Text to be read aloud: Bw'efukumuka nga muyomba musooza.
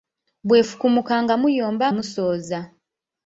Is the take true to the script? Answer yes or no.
yes